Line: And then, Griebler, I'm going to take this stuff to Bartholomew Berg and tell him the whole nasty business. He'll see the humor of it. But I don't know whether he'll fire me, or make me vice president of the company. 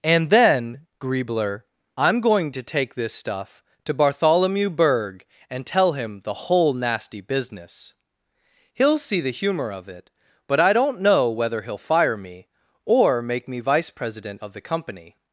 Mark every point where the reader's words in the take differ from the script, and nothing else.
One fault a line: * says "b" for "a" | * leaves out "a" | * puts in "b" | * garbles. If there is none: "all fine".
all fine